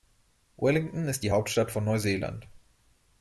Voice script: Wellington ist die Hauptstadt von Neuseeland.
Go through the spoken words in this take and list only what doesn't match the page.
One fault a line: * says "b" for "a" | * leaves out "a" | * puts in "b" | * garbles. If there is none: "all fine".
all fine